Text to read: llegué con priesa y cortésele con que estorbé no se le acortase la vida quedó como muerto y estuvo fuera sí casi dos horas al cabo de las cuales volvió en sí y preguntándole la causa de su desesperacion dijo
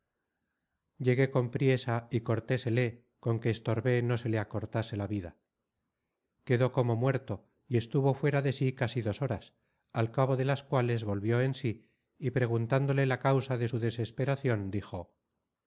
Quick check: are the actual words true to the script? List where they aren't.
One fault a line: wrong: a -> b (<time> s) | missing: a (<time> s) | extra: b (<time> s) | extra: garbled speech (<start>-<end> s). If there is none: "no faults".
extra: de (8.4 s)